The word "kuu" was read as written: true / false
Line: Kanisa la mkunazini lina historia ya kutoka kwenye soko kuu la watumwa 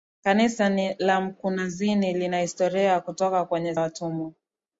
false